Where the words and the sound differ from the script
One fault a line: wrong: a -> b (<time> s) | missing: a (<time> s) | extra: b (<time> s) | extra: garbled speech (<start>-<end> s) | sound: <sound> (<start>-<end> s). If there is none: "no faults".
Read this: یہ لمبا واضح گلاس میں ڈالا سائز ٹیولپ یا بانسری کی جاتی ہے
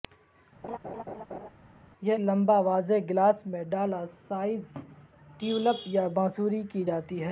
sound: laugh (0.6-1.5 s)